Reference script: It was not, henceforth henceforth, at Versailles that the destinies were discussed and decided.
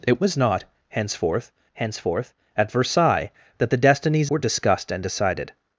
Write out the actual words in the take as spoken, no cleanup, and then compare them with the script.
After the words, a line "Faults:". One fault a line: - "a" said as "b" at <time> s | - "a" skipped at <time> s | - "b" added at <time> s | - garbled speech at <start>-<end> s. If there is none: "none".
It was not, henceforth henceforth, at Versailles that the destinies were discussed and decided.
Faults:
none